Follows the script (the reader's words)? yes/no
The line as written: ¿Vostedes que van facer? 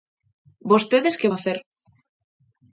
no